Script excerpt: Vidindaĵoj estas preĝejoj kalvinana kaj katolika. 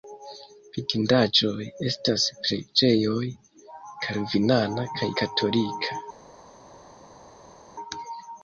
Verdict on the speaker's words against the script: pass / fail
pass